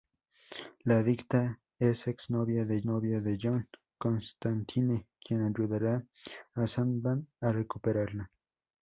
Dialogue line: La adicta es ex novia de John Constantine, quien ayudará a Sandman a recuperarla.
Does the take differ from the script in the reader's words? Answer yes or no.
yes